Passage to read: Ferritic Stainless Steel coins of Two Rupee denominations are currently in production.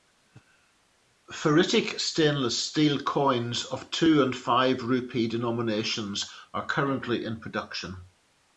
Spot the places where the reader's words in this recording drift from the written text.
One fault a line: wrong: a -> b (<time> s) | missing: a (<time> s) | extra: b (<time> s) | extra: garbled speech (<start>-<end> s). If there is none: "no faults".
extra: and Five (4.2 s)